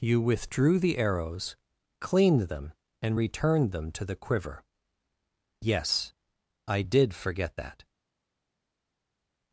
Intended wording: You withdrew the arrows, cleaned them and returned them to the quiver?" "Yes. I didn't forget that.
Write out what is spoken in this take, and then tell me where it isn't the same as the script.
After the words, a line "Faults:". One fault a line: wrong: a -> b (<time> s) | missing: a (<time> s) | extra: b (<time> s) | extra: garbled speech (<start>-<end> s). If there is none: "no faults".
You withdrew the arrows, cleaned them and returned them to the quiver?" "Yes. I did forget that.
Faults:
wrong: didn't -> did (6.8 s)